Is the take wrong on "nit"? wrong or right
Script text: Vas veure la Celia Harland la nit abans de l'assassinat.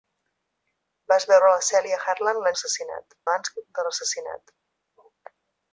wrong